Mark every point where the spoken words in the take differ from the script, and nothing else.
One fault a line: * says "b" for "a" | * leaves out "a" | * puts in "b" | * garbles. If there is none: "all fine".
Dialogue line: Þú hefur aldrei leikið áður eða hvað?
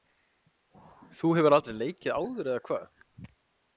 all fine